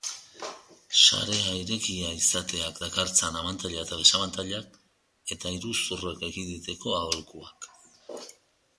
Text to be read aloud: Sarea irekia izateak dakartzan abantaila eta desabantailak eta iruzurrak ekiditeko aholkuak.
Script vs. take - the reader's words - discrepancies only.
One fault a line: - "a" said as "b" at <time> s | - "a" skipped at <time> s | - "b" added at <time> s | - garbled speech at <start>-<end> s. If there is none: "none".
none